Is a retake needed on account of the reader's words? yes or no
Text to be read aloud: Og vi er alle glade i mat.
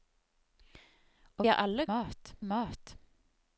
yes